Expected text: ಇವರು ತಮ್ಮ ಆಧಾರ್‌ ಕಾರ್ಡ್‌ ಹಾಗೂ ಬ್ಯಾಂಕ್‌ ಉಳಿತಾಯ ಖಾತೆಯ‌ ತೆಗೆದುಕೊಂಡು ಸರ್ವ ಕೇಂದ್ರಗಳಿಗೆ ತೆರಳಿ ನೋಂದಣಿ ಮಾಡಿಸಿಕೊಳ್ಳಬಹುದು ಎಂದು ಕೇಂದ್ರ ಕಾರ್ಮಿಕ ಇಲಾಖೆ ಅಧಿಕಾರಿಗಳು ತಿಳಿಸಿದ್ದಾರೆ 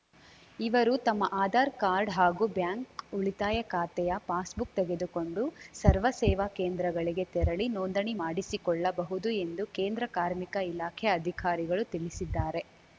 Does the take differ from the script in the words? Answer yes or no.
yes